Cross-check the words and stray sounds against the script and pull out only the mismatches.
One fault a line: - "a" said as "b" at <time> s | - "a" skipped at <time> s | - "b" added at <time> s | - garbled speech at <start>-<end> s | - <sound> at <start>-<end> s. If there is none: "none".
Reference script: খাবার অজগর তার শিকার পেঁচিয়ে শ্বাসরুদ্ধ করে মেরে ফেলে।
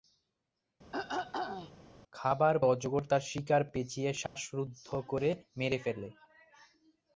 - throat clearing at 0.9-1.7 s
- dropout at 4.3-4.4 s